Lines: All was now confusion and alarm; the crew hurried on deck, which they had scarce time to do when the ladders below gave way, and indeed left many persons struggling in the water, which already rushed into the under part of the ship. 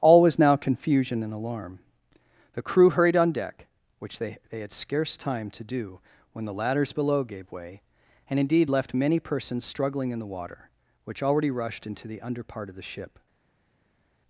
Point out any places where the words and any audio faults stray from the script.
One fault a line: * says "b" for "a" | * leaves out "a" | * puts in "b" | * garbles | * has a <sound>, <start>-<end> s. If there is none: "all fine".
* puts in "they"